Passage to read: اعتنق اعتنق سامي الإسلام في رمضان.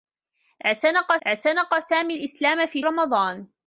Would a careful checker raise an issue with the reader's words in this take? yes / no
no